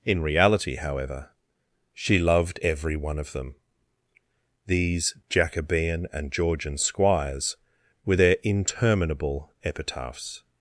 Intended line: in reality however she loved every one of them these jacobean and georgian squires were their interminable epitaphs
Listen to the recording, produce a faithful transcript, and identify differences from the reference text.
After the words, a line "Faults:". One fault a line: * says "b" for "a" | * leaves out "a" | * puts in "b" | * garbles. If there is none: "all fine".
in reality however she loved every one of them these jacobean and georgian squires were their interminable epitaphs
Faults:
all fine